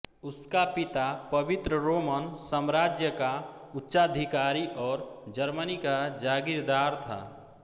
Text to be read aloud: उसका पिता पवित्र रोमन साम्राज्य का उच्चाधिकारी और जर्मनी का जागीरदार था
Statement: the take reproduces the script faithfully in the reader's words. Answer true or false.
true